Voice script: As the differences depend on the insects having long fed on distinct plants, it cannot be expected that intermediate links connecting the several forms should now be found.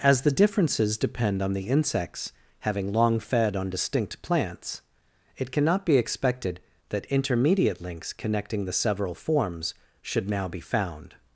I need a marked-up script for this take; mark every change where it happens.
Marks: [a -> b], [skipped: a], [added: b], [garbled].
As the differences depend on the insects having long fed on distinct plants, it cannot be expected that intermediate links connecting the several forms should now be found.